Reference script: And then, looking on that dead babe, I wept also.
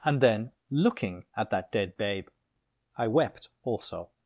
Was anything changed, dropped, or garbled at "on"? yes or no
yes